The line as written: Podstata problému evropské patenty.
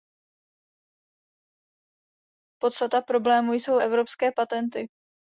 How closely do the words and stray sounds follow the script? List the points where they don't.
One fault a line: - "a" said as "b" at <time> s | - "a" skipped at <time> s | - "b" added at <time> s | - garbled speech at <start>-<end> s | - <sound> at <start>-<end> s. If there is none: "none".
- "jsou" added at 3.5 s